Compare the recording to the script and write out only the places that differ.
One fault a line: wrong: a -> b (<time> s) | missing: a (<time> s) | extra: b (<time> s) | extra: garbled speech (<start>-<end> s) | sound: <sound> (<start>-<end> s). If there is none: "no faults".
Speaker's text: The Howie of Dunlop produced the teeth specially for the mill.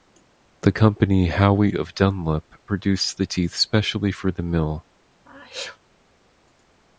extra: company (0.7 s)
sound: sneeze (5.2-5.8 s)